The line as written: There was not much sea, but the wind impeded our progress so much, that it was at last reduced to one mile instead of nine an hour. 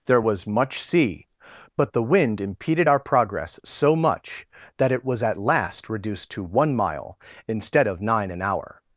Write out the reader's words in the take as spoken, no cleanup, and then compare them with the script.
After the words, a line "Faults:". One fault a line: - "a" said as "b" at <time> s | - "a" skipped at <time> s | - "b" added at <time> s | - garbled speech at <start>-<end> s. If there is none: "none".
There was much sea, but the wind impeded our progress so much, that it was at last reduced to one mile instead of nine an hour.
Faults:
- "not" skipped at 0.5 s